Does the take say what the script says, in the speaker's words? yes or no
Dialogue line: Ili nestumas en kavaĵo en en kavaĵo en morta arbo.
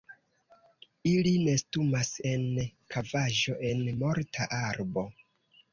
no